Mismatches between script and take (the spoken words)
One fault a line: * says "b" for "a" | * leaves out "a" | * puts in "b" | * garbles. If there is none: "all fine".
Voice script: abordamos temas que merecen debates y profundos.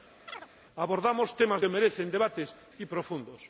all fine